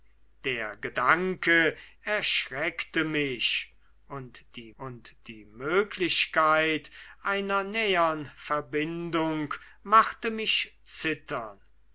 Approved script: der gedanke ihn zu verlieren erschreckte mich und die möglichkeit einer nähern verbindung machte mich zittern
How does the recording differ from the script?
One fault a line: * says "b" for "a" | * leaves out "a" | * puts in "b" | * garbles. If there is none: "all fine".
* says "erschreckte mich und die" for "ihn zu verlieren erschreckte mich"